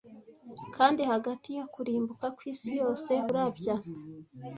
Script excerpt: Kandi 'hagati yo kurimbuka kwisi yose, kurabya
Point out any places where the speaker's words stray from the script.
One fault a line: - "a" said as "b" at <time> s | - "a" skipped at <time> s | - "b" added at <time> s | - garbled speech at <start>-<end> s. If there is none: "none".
none